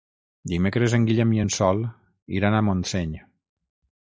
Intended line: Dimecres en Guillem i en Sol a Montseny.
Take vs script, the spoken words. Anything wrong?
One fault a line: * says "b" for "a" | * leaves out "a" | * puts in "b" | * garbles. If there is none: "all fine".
* puts in "iran"